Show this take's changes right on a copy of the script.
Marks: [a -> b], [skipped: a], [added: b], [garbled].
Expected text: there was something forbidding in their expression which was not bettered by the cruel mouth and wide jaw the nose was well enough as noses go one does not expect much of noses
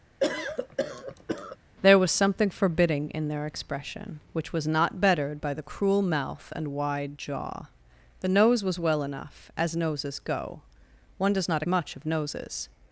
there was something forbidding in their expression which was not bettered by the cruel mouth and wide jaw the nose was well enough as noses go one does not [skipped: expect] much of noses